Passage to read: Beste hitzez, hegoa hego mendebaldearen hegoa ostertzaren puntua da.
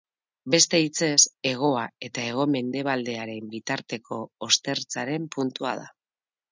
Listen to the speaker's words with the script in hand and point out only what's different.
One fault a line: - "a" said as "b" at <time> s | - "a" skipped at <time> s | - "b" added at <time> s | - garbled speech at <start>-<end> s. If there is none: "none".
- "eta" added at 2.1 s
- "hegoa" said as "bitarteko" at 3.5 s